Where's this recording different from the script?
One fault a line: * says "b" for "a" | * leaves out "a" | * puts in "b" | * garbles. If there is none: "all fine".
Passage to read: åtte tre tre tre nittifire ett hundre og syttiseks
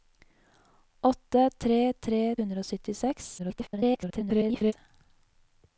* leaves out "tre nittifire ett"
* garbles